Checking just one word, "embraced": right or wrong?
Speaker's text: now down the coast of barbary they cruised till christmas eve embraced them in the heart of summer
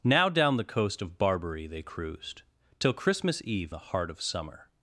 wrong